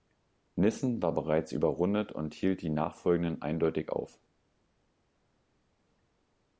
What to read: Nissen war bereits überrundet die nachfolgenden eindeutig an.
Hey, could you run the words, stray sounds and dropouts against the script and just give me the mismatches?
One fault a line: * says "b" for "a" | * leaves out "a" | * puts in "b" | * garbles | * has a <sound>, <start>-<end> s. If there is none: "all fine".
* puts in "und hielt"
* says "auf" for "an"